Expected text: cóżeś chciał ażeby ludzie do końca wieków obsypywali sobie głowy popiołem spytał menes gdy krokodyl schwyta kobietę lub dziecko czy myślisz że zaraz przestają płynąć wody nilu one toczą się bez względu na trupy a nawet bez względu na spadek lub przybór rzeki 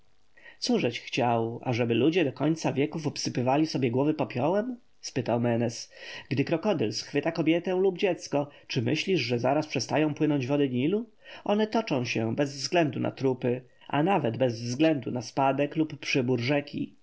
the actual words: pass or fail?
pass